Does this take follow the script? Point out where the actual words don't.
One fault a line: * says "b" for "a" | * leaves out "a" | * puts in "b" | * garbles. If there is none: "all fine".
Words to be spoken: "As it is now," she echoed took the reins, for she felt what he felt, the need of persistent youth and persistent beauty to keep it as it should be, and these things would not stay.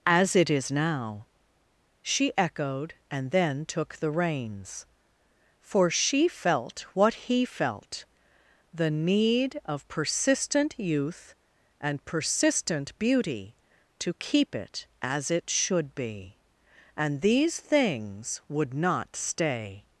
* puts in "and then"